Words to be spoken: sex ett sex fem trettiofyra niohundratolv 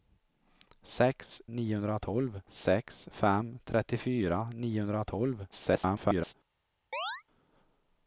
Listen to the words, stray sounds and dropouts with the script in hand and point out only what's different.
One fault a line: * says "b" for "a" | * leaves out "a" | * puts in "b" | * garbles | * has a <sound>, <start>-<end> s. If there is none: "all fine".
* says "niohundratolv" for "ett"
* garbles
* has a chirp, 6.9-7.2 s